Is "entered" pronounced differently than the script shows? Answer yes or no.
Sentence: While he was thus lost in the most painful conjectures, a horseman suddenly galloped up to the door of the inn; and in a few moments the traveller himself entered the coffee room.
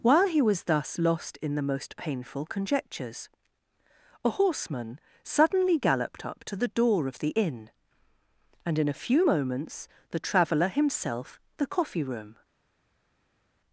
yes